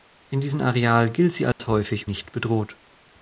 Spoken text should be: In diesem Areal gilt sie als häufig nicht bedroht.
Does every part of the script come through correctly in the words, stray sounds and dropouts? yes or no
no